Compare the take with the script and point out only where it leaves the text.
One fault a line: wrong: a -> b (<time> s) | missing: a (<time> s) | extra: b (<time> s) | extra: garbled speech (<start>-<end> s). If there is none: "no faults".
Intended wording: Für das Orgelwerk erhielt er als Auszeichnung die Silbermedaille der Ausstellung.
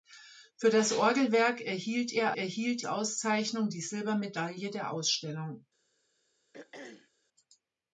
wrong: als -> erhielt (2.3 s)